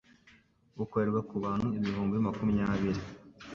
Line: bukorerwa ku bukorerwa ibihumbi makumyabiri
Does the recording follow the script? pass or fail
fail